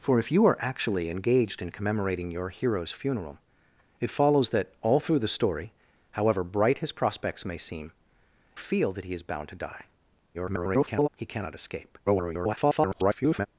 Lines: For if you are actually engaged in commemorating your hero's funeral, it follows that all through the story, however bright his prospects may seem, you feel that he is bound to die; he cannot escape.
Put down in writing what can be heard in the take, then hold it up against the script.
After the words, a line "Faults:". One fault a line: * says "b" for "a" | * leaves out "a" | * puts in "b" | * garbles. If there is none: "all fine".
For if you are actually engaged in commemorating your hero's funeral, it follows that all through the story, however bright his prospects may seem, feel that he is bound to die; [garbled] he cannot escape. [garbled]
Faults:
* leaves out "you"
* garbles
* garbles